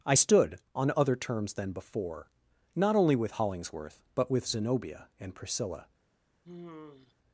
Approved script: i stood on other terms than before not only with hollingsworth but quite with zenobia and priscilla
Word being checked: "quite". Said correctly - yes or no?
no